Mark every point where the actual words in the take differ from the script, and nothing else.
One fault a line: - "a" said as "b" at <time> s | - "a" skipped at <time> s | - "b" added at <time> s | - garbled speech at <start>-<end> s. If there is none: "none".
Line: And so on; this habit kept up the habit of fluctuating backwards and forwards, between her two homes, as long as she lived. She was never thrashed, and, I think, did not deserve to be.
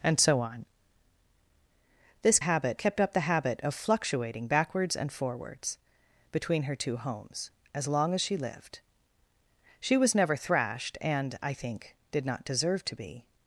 none